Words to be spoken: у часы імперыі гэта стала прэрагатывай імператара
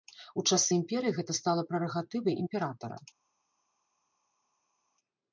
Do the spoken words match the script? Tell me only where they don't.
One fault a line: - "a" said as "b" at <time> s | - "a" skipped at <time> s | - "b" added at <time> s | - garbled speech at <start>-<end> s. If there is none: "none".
none